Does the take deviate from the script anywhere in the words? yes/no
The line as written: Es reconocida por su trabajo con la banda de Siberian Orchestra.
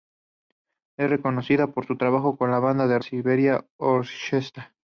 no